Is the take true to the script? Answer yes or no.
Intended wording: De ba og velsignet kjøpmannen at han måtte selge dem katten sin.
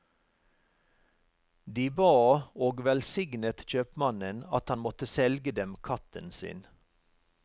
yes